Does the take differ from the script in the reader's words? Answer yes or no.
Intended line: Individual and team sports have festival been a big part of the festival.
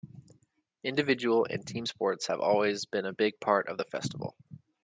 yes